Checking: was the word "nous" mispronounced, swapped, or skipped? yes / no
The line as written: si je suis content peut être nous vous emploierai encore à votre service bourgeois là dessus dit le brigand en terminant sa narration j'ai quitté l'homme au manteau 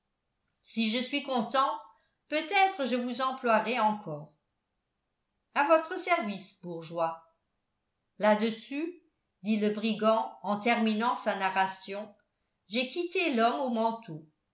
yes